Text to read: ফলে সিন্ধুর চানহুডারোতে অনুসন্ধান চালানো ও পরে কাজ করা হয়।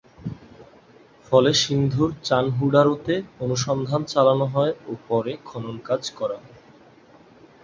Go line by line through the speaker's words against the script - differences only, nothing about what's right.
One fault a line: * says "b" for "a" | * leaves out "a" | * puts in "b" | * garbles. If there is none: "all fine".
* puts in "হয়"
* puts in "খনন"